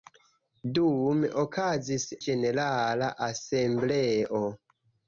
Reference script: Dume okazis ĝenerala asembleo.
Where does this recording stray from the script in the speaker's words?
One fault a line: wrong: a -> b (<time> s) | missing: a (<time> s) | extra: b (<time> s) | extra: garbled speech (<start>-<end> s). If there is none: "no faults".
no faults